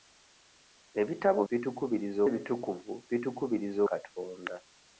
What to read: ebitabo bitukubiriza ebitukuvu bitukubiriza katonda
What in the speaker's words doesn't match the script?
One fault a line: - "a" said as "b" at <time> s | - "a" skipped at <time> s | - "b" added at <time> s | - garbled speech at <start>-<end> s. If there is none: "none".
none